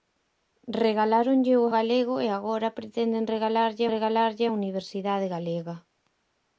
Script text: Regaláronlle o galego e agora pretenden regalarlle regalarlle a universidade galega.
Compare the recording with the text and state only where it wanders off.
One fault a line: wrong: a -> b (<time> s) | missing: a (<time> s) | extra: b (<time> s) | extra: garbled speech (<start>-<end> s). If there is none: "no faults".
no faults